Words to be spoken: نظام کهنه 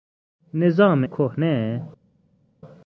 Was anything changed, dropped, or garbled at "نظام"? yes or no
no